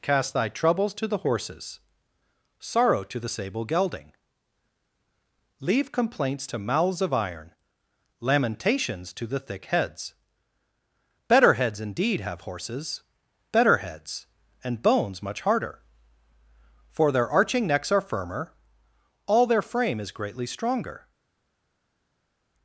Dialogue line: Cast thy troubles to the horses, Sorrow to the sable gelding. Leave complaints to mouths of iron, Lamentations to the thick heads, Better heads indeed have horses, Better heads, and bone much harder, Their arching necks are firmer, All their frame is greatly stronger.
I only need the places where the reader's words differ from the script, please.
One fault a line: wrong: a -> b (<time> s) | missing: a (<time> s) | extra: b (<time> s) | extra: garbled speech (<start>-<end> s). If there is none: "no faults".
wrong: bone -> bones (14.8 s)
extra: For (16.9 s)